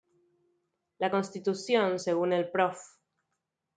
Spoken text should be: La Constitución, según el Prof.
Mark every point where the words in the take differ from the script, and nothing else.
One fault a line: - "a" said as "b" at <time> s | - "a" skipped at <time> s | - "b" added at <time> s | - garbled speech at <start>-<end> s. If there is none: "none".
none